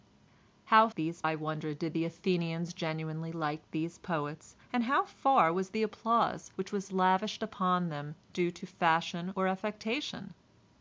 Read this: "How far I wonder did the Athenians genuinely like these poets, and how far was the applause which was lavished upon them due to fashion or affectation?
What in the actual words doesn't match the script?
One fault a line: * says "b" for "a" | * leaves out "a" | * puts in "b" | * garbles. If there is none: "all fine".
* says "these" for "far"